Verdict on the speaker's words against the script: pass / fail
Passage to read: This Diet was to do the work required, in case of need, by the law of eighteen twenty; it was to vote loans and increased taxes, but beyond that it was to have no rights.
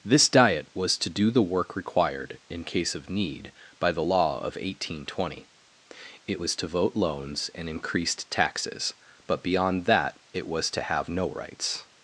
pass